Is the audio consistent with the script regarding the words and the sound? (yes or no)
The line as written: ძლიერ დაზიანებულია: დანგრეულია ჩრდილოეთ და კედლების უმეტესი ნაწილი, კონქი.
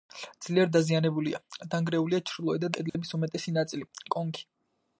no